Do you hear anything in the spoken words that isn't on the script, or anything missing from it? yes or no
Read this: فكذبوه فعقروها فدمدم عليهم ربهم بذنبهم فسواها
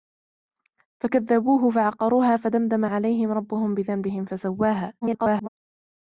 yes